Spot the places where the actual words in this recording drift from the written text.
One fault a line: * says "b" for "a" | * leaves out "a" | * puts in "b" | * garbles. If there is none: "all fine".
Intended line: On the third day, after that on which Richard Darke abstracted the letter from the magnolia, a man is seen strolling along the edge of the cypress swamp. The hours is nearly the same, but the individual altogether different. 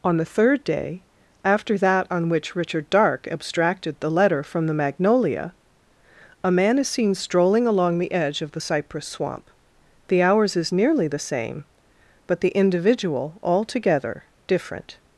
all fine